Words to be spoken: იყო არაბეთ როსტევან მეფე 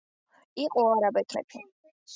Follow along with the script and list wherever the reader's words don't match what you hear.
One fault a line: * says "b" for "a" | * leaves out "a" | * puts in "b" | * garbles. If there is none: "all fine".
* leaves out "როსტევან"